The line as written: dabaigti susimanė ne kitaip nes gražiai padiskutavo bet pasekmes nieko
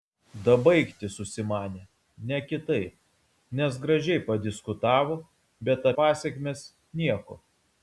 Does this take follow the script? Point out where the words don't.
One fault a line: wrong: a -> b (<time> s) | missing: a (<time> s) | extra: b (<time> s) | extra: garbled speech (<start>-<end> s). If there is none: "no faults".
no faults